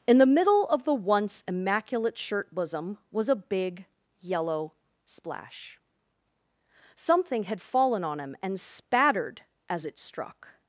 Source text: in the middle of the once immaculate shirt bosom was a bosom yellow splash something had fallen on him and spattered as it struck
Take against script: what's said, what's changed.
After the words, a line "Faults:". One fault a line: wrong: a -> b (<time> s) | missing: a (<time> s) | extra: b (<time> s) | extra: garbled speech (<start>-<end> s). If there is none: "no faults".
in the middle of the once immaculate shirt bosom was a big yellow splash something had fallen on him and spattered as it struck
Faults:
wrong: bosom -> big (3.4 s)